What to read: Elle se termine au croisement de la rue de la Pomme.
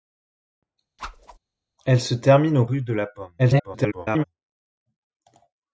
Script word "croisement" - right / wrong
wrong